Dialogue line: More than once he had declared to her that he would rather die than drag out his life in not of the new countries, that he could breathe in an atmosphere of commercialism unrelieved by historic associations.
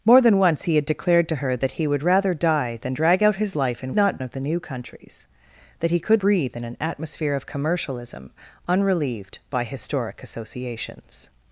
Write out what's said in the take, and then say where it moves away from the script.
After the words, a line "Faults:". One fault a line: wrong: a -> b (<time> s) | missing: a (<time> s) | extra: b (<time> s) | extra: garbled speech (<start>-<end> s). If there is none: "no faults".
More than once he had declared to her that he would rather die than drag out his life in not of the new countries, that he could breathe in an atmosphere of commercialism unrelieved by historic associations.
Faults:
no faults